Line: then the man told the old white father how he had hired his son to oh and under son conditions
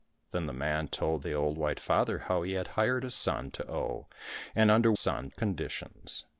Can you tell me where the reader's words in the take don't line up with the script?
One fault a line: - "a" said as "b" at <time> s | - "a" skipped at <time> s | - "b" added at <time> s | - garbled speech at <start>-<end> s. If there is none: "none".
none